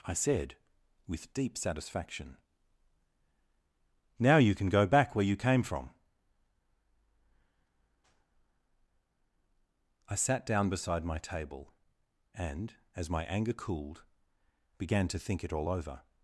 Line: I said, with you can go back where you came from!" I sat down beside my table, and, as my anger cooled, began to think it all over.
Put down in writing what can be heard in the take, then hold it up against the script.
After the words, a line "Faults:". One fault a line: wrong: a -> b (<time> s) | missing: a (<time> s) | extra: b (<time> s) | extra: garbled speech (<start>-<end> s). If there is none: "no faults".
I said, with deep satisfaction. "Now you can go back where you came from!" I sat down beside my table, and, as my anger cooled, began to think it all over.
Faults:
extra: deep satisfaction Now (1.3 s)